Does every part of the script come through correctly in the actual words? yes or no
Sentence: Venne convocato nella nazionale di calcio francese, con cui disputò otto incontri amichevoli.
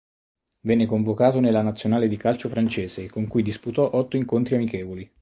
yes